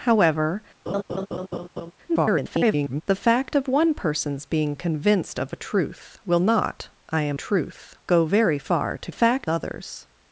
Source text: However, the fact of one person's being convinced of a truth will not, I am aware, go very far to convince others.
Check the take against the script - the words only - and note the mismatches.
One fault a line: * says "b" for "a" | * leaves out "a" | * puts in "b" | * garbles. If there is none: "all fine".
* garbles
* says "truth" for "aware"
* says "fact" for "convince"